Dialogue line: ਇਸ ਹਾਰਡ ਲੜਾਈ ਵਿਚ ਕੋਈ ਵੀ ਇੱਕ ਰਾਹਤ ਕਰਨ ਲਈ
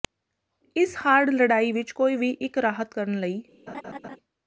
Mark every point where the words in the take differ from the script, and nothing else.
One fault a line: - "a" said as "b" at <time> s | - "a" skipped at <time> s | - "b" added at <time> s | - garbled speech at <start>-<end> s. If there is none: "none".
none